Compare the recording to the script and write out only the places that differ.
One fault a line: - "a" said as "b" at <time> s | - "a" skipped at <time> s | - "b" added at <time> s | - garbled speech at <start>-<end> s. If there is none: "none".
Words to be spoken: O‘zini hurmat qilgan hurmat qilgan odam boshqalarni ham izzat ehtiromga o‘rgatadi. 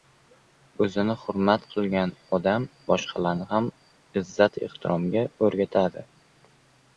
- "hurmat qilgan" skipped at 2.1 s